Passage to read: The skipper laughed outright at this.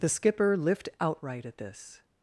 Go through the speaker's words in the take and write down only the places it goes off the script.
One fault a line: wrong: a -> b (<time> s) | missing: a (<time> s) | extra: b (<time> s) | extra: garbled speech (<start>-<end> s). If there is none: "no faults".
wrong: laughed -> lift (0.6 s)